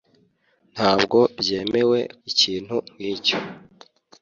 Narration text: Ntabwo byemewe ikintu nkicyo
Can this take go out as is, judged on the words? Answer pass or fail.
pass